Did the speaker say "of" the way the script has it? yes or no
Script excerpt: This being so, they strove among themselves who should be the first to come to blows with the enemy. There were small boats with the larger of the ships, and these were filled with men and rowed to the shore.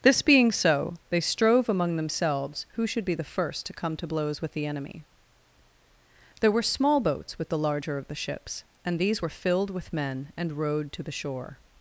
yes